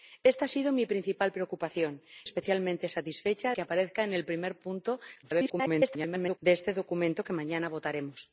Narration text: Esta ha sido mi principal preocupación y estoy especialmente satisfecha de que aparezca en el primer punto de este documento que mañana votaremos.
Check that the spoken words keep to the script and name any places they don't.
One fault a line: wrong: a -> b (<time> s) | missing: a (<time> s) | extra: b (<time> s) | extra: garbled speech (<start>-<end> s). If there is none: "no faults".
missing: y estoy (2.0 s)
missing: de (3.5 s)
extra: garbled speech (5.2-6.4 s)